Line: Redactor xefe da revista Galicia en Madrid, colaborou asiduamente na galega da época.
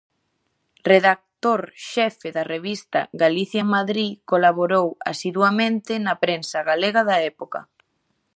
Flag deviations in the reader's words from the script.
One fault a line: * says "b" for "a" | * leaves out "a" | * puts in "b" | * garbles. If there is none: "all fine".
* puts in "prensa"